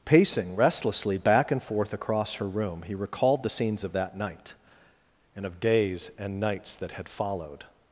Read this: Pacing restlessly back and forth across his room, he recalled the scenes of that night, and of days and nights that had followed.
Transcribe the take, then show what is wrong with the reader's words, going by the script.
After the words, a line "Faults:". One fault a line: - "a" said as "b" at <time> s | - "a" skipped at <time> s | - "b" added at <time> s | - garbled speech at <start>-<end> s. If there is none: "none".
Pacing restlessly back and forth across her room, he recalled the scenes of that night, and of days and nights that had followed.
Faults:
- "his" said as "her" at 2.4 s